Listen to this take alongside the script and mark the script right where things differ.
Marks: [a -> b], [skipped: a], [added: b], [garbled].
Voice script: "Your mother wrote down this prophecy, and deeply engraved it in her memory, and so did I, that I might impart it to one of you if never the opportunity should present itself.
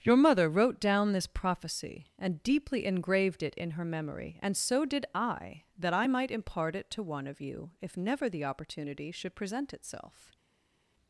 "Your mother wrote down this prophecy, and deeply engraved it in her memory, and so did I, that I might impart it to one of you if never the opportunity should present itself.